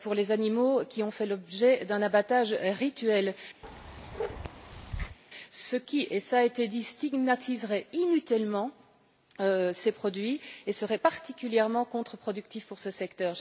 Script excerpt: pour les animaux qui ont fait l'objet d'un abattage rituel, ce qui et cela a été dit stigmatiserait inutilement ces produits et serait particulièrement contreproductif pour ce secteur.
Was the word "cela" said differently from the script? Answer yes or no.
no